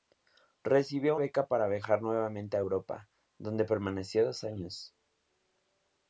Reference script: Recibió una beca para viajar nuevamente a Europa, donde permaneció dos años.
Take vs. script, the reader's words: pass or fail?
fail